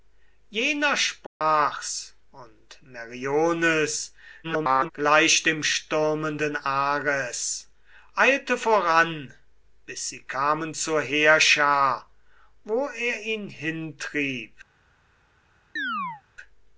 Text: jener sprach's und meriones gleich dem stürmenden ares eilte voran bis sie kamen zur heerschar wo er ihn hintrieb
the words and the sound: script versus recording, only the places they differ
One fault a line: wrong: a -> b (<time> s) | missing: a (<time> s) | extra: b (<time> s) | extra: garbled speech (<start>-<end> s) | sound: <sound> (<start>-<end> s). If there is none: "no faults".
sound: dropout (1.3-1.4 s)
extra: garbled speech (4.4-4.9 s)
sound: chirp (15.8-16.2 s)